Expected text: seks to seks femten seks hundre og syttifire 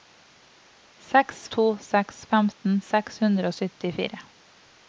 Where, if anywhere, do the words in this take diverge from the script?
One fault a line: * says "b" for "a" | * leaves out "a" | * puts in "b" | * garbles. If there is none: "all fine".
all fine